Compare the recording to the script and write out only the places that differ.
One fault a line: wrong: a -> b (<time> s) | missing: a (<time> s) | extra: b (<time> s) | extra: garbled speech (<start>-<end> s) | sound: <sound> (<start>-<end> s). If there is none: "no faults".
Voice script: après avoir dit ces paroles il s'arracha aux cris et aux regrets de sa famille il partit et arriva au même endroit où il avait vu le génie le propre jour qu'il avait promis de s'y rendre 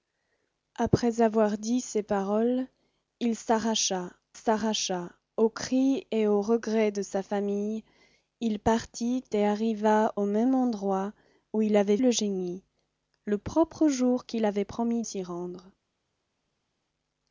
extra: s'arracha (4.3 s)
missing: vu (12.0 s)
missing: de (15.0 s)